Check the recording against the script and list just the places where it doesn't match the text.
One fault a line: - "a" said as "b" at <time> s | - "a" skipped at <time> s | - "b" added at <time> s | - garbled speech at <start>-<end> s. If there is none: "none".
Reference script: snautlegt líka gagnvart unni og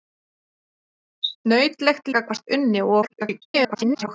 - "líka" skipped at 2.1 s
- garbled speech at 3.0-4.1 s